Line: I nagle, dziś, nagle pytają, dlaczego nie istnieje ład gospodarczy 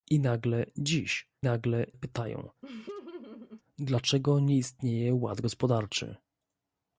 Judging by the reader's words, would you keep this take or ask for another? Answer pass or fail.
pass